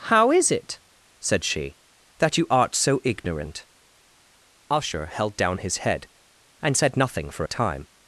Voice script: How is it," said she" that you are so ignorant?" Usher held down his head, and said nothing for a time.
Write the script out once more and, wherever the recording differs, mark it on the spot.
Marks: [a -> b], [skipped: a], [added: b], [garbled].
How is it," said she" that you [are -> art] so ignorant?" Usher held down his head, and said nothing for a time.